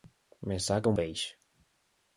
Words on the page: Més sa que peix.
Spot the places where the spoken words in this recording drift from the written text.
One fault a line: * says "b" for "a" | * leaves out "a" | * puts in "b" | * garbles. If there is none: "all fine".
all fine